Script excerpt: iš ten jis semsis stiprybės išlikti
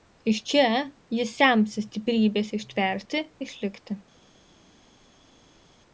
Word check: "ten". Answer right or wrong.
wrong